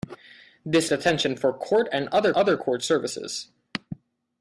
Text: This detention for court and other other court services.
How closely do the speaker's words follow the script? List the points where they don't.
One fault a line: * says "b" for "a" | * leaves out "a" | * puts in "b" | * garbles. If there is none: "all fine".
all fine